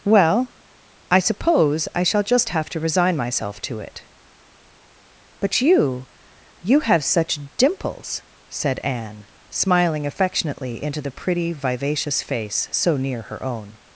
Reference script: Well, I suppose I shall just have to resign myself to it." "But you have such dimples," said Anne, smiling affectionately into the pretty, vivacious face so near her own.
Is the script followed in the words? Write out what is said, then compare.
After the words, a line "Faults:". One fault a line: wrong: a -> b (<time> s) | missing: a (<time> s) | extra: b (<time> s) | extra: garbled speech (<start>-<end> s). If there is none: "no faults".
Well, I suppose I shall just have to resign myself to it." "But you you have such dimples," said Anne, smiling affectionately into the pretty, vivacious face so near her own.
Faults:
extra: you (6.6 s)